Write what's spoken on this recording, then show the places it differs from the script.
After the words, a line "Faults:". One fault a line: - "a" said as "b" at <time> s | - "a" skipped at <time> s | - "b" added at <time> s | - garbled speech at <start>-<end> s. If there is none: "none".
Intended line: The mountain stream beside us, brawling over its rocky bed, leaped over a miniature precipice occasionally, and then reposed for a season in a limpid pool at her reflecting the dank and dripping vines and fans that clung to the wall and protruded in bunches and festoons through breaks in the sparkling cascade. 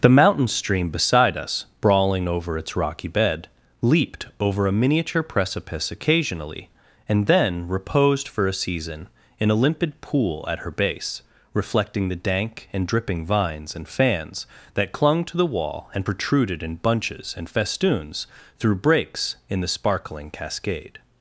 The mountain stream beside us, brawling over its rocky bed, leaped over a miniature precipice occasionally, and then reposed for a season in a limpid pool at her base, reflecting the dank and dripping vines and fans that clung to the wall and protruded in bunches and festoons through breaks in the sparkling cascade.
Faults:
- "base" added at 10.7 s